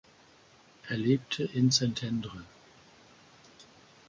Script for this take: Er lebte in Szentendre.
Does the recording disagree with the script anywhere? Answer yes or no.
no